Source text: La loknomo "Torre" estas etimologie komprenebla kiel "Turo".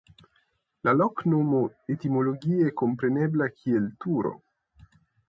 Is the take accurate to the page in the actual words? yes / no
no